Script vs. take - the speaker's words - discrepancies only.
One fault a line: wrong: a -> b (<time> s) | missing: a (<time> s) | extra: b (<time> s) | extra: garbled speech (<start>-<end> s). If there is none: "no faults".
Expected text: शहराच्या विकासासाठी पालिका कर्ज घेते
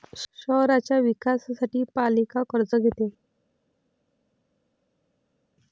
no faults